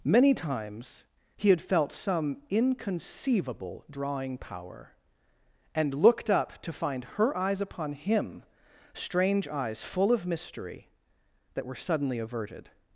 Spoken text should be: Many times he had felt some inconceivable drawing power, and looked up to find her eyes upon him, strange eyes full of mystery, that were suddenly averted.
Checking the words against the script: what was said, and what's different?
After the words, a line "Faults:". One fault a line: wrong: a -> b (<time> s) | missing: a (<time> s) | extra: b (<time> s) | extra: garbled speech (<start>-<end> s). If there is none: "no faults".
Many times he had felt some inconceivable drawing power, and looked up to find her eyes upon him, strange eyes full of mystery, that were suddenly averted.
Faults:
no faults